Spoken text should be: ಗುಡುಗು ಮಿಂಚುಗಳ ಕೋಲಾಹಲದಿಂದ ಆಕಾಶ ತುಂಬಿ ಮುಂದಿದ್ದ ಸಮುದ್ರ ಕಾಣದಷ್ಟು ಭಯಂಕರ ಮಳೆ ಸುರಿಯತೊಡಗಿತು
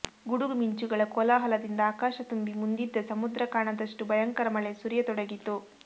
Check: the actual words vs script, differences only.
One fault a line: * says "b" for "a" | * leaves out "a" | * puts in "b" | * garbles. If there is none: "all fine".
all fine